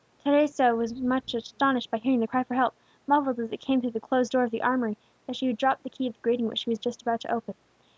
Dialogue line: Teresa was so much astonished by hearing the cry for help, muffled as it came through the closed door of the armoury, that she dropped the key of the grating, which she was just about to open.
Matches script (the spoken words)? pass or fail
pass